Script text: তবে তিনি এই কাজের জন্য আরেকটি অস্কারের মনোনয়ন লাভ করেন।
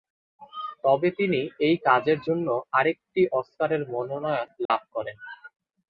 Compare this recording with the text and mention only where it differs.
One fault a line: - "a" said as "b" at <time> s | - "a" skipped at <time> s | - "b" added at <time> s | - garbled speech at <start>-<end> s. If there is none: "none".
none